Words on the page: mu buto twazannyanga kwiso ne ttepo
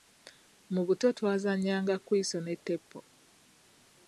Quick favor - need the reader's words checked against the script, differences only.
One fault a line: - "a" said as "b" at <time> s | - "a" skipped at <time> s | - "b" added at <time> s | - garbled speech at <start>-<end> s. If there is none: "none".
none